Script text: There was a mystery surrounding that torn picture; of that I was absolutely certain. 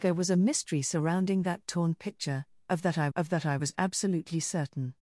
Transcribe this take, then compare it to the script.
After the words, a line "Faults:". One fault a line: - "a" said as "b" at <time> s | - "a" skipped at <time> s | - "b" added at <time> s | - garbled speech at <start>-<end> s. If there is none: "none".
There was a mystery surrounding that torn picture; of that I of that I was absolutely certain.
Faults:
- "of that I" added at 3.1 s